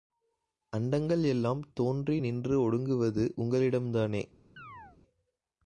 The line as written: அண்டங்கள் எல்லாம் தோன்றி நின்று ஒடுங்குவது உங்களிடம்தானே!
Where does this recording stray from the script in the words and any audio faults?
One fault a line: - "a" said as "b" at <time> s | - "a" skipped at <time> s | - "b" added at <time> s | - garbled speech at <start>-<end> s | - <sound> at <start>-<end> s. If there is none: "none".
- chirp at 4.6-5.0 s